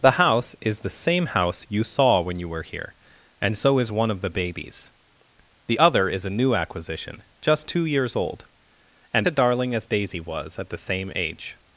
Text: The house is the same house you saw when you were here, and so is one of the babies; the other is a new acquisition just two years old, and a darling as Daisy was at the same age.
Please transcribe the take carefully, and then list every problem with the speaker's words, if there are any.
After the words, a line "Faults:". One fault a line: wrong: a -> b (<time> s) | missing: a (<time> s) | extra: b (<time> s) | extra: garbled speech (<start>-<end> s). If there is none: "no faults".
The house is the same house you saw when you were here, and so is one of the babies; the other is a new acquisition just two years old, and a darling as Daisy was at the same age.
Faults:
no faults